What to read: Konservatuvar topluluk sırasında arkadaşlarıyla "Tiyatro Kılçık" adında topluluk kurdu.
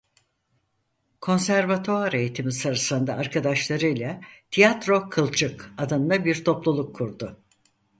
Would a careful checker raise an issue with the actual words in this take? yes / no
yes